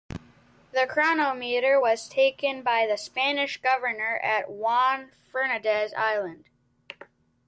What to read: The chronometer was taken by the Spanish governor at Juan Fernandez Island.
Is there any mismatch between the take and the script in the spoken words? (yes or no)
no